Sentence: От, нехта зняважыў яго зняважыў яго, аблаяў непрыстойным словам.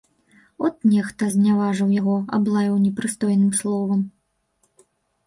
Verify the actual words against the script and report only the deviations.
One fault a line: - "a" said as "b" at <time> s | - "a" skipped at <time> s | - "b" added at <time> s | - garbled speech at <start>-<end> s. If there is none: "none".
- "зняважыў яго" skipped at 2.2 s